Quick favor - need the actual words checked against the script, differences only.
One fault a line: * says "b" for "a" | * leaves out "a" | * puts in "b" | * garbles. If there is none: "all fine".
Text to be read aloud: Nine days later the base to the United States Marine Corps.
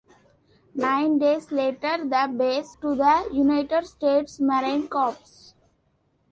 all fine